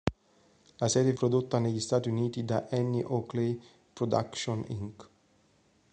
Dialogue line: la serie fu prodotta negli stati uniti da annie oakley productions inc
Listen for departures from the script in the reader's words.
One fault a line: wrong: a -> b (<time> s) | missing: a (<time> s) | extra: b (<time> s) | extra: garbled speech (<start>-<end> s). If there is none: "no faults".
missing: fu (1.1 s)